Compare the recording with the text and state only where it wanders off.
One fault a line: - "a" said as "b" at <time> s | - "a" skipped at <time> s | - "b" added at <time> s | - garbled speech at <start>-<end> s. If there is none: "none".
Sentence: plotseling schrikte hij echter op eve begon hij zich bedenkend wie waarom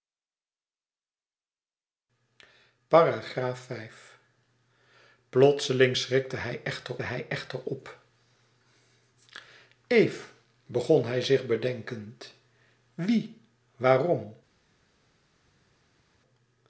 - "hij echter" added at 7.0 s